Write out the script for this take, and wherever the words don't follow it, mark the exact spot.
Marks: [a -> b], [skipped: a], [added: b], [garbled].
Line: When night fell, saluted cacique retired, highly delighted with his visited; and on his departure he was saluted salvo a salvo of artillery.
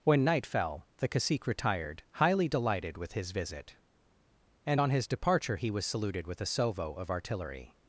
When night fell, [saluted -> the] cacique retired, highly delighted with his [visited; -> visit] and on his departure he was saluted [salvo -> with] a salvo of artillery.